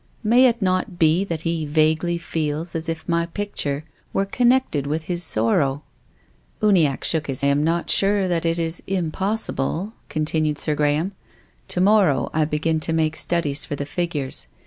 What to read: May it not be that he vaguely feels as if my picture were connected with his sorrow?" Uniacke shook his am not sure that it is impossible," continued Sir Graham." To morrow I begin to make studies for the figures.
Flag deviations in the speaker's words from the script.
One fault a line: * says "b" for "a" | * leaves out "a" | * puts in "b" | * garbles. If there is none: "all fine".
all fine